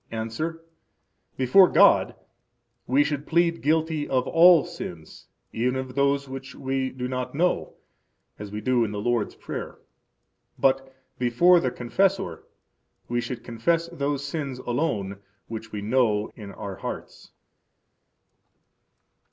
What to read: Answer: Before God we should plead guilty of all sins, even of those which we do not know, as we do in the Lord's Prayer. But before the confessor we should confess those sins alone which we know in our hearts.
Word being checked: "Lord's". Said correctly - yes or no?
yes